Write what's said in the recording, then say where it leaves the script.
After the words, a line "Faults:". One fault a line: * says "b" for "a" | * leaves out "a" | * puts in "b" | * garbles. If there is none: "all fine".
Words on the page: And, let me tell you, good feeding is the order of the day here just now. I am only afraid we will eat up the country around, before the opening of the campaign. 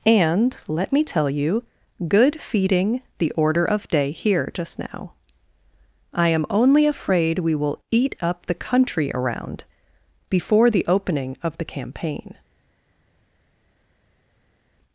And, let me tell you, good feeding the order of day here just now. I am only afraid we will eat up the country around, before the opening of the campaign.
Faults:
* leaves out "is"
* leaves out "the"